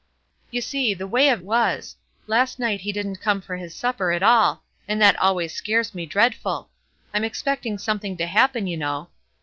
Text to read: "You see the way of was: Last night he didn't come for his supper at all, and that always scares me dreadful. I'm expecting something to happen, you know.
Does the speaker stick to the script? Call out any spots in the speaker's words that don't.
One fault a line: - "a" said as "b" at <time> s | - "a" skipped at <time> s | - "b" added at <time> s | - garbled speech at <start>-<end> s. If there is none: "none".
none